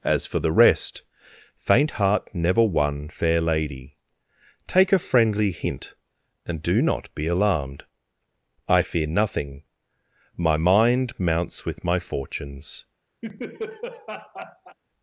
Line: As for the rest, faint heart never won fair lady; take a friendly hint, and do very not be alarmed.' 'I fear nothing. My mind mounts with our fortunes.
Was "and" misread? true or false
false